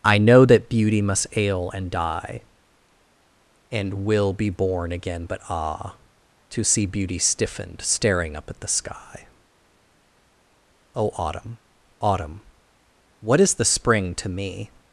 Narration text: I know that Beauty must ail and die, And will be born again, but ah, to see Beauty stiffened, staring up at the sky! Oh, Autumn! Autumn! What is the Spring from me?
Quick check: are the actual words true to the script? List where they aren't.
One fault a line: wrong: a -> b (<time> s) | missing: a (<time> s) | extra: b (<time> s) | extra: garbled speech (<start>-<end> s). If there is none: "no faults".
wrong: from -> to (14.1 s)